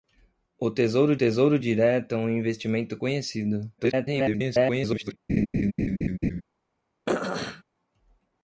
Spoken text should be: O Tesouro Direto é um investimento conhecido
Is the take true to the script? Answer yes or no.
no